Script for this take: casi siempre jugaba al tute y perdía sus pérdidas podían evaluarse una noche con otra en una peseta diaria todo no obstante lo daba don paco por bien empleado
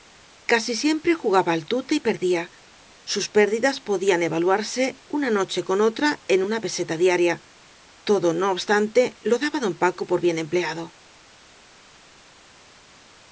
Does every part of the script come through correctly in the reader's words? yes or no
yes